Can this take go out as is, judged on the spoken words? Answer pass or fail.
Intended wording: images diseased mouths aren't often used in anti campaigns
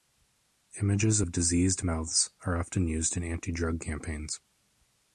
fail